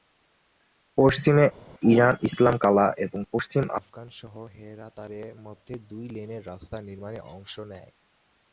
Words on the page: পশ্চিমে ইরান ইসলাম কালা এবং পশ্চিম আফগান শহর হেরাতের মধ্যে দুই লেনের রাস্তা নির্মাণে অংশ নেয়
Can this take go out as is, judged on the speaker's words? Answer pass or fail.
pass